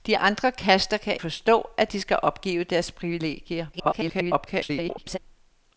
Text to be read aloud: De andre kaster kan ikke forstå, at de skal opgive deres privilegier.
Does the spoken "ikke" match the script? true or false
false